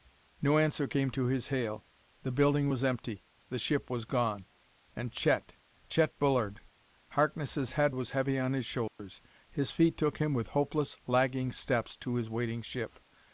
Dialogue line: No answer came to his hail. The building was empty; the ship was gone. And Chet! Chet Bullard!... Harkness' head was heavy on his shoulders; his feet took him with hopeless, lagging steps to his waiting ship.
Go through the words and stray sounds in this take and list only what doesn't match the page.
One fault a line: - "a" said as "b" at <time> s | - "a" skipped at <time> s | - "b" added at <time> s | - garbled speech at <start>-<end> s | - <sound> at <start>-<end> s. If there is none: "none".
- dropout at 8.9-9.0 s